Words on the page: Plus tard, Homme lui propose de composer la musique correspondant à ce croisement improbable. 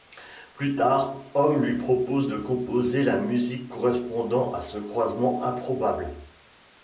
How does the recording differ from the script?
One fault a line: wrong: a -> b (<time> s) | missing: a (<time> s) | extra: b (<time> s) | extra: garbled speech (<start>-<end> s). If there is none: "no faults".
no faults